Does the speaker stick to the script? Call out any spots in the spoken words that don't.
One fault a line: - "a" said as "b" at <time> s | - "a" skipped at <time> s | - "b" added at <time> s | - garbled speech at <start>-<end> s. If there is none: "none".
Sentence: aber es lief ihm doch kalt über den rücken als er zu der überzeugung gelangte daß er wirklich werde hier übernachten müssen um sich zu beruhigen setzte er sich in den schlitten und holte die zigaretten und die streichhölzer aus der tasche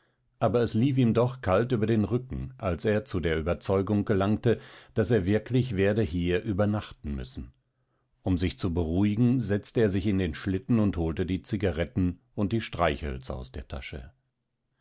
none